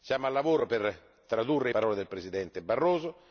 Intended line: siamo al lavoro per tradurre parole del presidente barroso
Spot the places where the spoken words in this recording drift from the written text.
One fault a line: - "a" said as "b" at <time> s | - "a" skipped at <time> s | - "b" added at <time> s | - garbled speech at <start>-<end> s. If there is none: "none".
none